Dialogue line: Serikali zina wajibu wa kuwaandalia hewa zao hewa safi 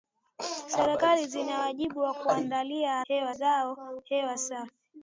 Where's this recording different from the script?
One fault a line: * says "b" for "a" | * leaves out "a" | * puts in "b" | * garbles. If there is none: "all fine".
all fine